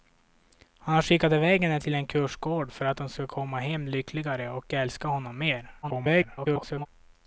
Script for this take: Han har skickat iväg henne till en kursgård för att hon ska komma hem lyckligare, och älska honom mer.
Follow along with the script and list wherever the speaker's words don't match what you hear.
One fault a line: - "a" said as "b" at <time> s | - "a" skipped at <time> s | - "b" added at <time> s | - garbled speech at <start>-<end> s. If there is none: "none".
- garbled speech at 5.8-6.9 s